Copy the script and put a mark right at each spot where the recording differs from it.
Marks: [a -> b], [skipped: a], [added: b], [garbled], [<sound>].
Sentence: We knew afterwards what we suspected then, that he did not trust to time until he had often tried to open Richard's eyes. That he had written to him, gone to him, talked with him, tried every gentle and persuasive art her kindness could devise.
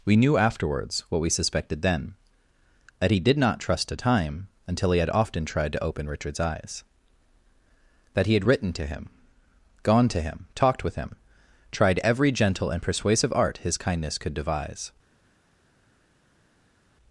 We knew afterwards what we suspected then, that he did not trust to time until he had often tried to open Richard's eyes. That he had written to him, gone to him, talked with him, tried every gentle and persuasive art [her -> his] kindness could devise.